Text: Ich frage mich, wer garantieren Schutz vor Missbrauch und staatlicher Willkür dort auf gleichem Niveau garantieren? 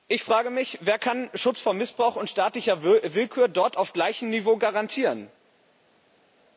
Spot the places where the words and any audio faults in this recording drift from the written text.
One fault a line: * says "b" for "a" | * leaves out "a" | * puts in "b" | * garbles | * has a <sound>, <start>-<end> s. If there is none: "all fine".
* says "kann" for "garantieren"